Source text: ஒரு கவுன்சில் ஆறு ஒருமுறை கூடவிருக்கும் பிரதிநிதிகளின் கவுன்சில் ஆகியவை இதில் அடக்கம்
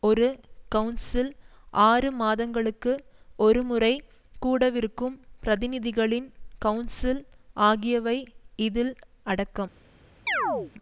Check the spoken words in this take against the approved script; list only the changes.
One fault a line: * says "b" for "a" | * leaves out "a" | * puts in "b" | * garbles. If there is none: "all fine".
* puts in "மாதங்களுக்கு"